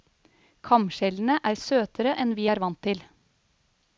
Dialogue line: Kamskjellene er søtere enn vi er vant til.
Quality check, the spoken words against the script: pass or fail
pass